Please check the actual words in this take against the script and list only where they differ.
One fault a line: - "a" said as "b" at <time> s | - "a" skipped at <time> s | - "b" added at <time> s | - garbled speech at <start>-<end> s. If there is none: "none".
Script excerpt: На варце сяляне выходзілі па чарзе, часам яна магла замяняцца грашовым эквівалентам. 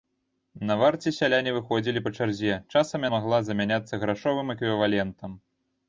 - "яна" skipped at 3.1 s